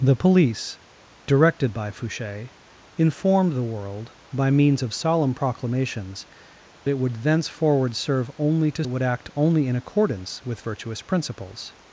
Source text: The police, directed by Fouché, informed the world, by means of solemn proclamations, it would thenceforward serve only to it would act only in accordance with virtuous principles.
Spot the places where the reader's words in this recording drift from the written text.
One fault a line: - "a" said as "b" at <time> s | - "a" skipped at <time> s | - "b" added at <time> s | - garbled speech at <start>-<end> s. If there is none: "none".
none